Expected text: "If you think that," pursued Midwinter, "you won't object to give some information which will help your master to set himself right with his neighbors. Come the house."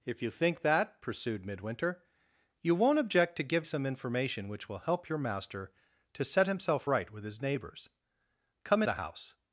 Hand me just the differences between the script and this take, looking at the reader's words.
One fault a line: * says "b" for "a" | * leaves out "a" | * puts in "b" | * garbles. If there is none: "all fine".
all fine